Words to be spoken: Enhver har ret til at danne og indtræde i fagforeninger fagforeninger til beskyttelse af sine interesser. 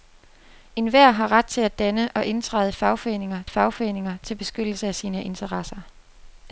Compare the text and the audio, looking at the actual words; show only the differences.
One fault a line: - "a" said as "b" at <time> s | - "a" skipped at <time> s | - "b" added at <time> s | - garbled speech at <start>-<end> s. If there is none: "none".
none